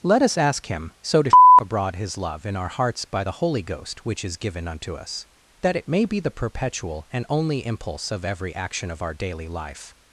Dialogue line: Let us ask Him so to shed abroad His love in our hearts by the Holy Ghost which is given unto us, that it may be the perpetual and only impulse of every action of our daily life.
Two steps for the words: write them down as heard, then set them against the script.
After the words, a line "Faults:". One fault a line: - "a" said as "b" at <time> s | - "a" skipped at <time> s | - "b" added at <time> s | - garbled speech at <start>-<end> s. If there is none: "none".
Let us ask Him so to sh abroad His love in our hearts by the Holy Ghost which is given unto us, that it may be the perpetual and only impulse of every action of our daily life.
Faults:
- "shed" said as "sh" at 1.3 s